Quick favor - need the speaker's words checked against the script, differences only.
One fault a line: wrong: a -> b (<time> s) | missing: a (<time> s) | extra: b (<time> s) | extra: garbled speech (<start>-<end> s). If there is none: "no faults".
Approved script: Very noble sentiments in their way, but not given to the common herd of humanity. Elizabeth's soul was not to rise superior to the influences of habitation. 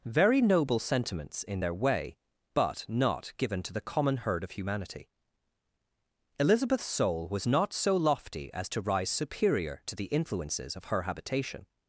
extra: so lofty as (7.7 s)
extra: her (10.9 s)